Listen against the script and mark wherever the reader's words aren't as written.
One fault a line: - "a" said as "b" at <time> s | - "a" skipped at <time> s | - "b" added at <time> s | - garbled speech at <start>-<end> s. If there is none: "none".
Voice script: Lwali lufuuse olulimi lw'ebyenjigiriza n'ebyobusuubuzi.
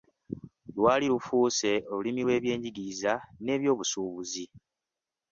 none